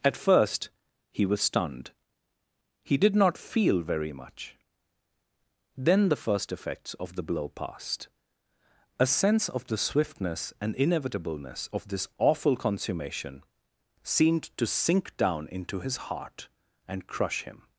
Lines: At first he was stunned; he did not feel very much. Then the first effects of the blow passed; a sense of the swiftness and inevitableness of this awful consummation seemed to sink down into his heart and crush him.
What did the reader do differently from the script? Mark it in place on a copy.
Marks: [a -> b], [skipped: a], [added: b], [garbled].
At first he was stunned; he did not feel very much. Then the first effects of the blow passed; a sense of the swiftness and inevitableness of this awful consummation seemed to sink down into his heart and crush him.